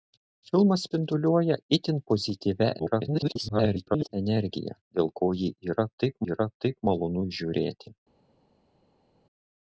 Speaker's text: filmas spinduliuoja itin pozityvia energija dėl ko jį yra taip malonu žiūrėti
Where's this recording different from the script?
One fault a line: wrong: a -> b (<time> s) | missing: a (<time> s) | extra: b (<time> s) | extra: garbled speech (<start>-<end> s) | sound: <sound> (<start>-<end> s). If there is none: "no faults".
extra: garbled speech (2.8-4.1 s)
extra: yra taip (6.3 s)